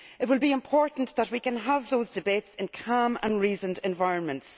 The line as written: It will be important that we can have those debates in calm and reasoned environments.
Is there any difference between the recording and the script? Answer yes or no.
no